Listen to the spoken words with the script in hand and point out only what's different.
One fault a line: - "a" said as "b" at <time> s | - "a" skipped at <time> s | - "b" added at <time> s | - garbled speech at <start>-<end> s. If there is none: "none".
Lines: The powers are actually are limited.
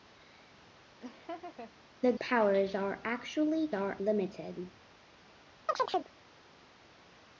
none